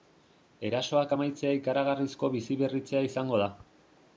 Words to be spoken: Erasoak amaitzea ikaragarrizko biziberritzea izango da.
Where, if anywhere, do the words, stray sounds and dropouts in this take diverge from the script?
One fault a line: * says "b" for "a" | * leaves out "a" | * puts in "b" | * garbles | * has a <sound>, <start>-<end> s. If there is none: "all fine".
all fine